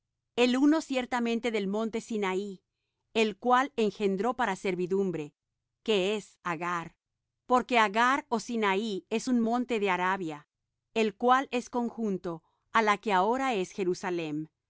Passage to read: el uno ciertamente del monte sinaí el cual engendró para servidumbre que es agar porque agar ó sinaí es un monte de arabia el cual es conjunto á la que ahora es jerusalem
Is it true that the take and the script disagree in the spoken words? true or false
false